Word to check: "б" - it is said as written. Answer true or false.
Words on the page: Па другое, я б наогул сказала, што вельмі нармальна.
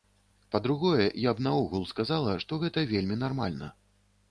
true